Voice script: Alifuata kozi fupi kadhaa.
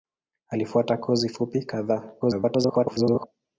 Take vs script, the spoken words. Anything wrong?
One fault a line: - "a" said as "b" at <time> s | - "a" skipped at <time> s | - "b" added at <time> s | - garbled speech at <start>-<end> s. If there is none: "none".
- garbled speech at 2.2-3.3 s